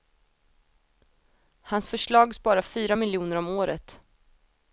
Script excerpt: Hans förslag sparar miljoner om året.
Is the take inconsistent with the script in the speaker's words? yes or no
yes